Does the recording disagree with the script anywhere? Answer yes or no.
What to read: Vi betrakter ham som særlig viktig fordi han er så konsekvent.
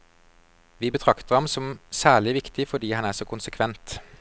no